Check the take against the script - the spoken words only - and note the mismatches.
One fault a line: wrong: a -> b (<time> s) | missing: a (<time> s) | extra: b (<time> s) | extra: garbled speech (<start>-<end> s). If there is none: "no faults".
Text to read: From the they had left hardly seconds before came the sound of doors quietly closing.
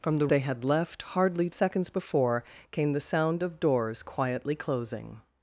no faults